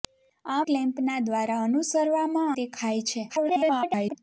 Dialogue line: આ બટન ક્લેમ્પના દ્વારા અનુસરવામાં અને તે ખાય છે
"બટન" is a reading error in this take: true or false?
true